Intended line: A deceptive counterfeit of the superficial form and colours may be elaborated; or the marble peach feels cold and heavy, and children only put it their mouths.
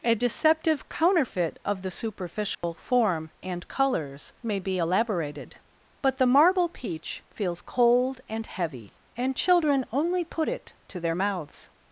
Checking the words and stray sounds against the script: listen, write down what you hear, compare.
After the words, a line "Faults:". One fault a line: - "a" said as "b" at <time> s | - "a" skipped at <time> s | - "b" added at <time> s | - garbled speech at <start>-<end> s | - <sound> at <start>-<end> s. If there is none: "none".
A deceptive counterfeit of the superficial form and colours may be elaborated; but the marble peach feels cold and heavy, and children only put it to their mouths.
Faults:
- dropout at 2.5-2.6 s
- "or" said as "but" at 6.0 s
- "to" added at 10.9 s